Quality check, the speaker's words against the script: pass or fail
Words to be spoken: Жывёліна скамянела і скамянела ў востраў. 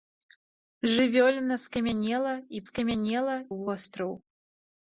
pass